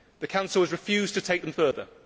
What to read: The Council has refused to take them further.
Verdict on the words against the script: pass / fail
pass